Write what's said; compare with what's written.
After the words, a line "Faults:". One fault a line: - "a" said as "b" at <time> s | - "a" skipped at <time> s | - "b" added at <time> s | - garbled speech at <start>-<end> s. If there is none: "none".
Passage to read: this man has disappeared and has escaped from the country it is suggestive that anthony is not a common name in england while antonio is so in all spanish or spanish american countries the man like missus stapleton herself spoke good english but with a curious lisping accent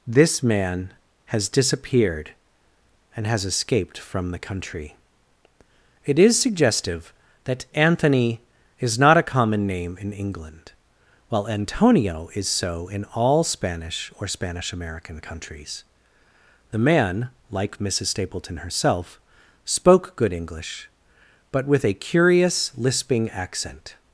this man has disappeared and has escaped from the country it is suggestive that anthony is not a common name in england while antonio is so in all spanish or spanish american countries the man like missus stapleton herself spoke good english but with a curious lisping accent
Faults:
none